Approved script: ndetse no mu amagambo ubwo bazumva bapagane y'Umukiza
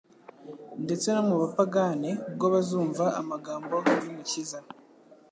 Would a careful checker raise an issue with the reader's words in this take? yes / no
yes